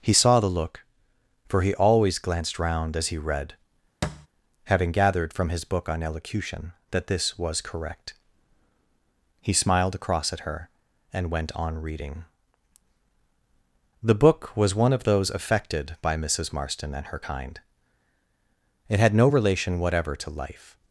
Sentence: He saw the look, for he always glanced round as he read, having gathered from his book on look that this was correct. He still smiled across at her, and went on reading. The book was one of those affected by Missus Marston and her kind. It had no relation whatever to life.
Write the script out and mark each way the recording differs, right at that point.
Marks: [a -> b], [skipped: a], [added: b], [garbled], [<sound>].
He saw the look, for he always glanced round as he read, [thud] having gathered from his book on [look -> elocution] that this was correct. He [skipped: still] smiled across at her, and went on reading. The book was one of those affected by Missus Marston and her kind. It had no relation whatever to life.